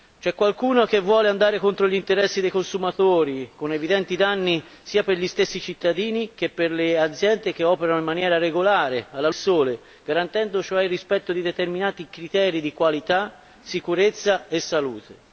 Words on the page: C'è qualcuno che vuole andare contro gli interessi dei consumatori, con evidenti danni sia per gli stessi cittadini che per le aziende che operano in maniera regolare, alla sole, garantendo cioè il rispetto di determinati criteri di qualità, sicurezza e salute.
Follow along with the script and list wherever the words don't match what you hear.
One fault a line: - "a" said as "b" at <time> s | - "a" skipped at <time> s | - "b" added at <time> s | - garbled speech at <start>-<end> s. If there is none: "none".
none